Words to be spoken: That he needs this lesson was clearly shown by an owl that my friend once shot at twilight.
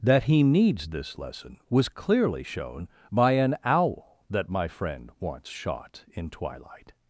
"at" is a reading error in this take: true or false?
true